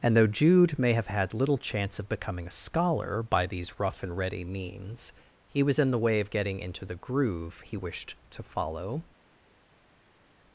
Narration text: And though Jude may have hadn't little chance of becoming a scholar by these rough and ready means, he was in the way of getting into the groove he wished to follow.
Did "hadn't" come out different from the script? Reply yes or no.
yes